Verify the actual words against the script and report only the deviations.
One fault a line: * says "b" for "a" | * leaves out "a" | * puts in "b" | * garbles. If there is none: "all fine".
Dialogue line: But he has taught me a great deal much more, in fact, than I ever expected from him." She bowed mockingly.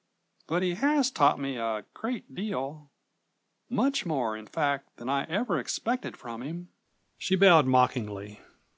all fine